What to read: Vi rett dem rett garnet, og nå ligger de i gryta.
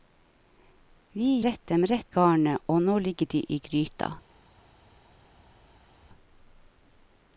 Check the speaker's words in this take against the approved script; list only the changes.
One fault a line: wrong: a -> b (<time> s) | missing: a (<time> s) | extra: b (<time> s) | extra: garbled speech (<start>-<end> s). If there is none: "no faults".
no faults